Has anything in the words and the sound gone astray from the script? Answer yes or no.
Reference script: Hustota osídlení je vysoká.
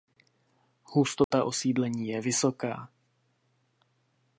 yes